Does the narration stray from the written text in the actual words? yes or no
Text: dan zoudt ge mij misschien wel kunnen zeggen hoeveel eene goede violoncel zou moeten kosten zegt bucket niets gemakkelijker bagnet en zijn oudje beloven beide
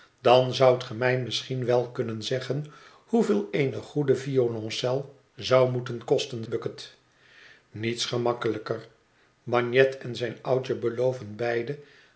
yes